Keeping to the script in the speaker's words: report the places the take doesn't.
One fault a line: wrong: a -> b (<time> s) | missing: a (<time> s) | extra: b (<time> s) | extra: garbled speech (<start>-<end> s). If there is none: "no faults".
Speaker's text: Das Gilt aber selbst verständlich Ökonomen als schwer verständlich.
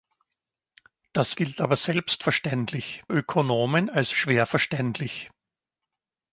no faults